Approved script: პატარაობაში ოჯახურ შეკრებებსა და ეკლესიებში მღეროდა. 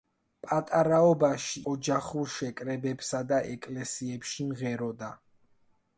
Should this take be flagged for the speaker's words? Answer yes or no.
no